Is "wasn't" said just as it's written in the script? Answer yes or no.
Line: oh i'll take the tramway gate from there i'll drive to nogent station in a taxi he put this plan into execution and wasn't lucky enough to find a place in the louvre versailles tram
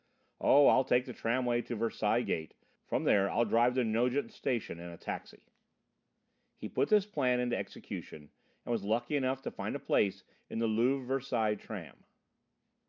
no